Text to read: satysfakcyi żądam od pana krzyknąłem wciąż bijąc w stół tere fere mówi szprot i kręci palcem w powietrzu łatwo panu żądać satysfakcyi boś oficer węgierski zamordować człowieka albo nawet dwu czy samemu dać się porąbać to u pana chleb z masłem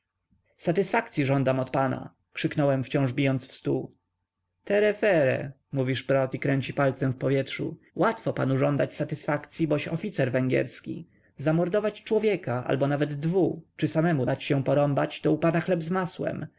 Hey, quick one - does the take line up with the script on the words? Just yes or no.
yes